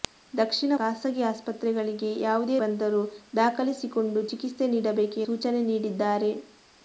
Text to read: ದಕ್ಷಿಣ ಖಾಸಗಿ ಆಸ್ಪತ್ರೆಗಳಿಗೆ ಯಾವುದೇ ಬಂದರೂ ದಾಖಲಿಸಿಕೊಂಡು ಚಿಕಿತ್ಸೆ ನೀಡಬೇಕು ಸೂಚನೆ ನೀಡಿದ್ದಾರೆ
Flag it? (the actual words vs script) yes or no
no